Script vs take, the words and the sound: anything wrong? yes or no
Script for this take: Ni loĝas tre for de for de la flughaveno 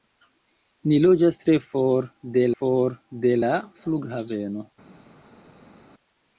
no